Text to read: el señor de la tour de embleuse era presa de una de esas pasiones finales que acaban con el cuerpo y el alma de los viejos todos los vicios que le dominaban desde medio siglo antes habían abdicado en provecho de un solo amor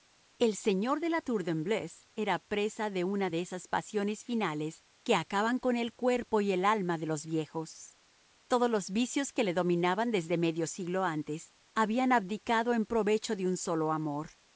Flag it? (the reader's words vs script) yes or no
no